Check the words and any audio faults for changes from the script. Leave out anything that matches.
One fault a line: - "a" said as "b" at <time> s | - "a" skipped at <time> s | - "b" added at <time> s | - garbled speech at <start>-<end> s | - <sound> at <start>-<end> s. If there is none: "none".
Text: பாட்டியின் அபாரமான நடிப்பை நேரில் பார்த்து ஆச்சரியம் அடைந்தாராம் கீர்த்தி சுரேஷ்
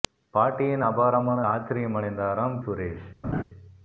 - "நடிப்பை நேரில் பார்த்து" skipped at 1.4 s
- "கீர்த்தி" skipped at 2.6 s
- laugh at 3.2-3.4 s